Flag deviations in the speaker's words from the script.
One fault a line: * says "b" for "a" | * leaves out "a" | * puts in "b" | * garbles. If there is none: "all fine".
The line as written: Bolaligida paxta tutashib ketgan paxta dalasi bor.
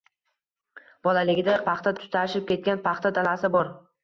all fine